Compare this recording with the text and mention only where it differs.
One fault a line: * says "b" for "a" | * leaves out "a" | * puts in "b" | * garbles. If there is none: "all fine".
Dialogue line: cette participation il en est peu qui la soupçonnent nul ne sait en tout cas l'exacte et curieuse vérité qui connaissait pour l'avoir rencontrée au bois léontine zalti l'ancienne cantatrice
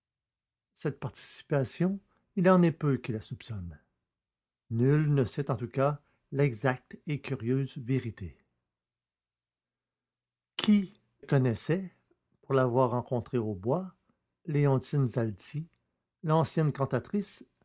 all fine